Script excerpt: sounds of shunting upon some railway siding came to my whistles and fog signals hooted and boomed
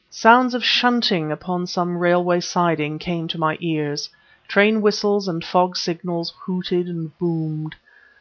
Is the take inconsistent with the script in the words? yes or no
yes